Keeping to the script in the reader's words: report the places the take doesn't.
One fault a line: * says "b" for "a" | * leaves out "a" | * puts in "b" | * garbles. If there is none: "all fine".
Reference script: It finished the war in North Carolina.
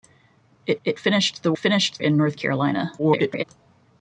* puts in "it"
* says "finished" for "war"
* garbles